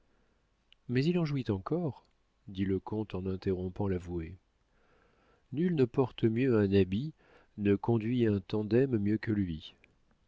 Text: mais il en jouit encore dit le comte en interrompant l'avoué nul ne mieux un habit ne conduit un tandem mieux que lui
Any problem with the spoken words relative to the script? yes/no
yes